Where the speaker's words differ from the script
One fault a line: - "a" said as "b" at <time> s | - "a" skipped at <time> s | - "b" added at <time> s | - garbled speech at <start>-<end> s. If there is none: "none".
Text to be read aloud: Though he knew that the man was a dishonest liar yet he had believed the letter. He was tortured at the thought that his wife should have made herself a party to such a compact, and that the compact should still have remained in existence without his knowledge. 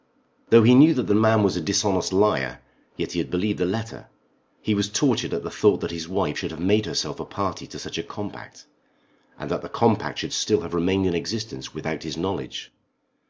none